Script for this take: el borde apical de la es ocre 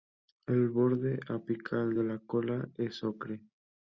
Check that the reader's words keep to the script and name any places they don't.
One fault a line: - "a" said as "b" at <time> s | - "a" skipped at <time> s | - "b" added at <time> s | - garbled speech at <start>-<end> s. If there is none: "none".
- "cola" added at 2.2 s